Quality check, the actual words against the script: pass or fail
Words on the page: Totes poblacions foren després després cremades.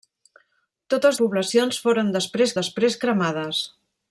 pass